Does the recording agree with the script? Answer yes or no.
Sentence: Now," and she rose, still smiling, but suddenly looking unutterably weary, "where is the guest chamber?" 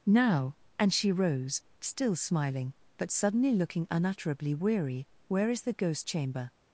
no